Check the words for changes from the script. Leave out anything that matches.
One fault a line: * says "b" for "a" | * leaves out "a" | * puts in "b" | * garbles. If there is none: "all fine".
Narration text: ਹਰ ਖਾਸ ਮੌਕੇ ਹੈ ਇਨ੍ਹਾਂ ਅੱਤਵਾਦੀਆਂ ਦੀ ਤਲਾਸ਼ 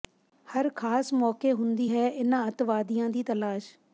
* puts in "ਹੁੰਦੀ"